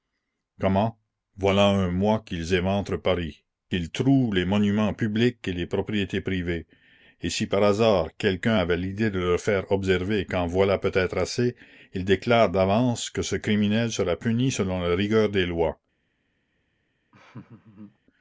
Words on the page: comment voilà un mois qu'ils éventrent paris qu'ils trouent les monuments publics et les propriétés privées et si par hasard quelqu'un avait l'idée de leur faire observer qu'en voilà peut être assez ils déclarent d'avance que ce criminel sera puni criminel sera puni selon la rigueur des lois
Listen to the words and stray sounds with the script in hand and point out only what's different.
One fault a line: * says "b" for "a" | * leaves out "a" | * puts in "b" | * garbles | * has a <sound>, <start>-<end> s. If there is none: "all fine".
* leaves out "criminel sera puni"
* has a laugh, 17.1-18.0 s